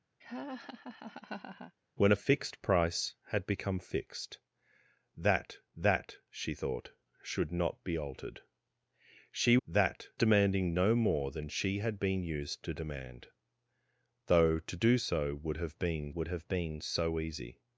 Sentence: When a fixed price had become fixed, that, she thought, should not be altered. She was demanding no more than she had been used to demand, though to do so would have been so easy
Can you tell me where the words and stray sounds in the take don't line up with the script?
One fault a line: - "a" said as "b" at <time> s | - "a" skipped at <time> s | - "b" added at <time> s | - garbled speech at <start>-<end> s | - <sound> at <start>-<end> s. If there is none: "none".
- laugh at 0.2-1.7 s
- "that" added at 5.7 s
- "was" said as "that" at 9.7 s
- "would have been" added at 16.1 s